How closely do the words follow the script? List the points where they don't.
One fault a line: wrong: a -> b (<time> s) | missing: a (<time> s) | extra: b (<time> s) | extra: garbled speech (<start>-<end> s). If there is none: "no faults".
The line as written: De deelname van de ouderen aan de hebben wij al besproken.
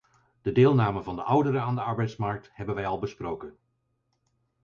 extra: arbeidsmarkt (1.8 s)